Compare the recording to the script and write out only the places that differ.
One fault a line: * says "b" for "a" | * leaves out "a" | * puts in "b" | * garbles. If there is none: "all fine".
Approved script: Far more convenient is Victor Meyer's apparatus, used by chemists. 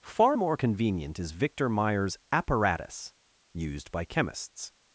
all fine